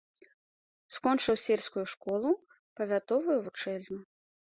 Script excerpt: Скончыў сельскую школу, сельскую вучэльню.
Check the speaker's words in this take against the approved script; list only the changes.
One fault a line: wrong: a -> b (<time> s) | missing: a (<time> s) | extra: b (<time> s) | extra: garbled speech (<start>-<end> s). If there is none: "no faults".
wrong: сельскую -> павятовую (2.8 s)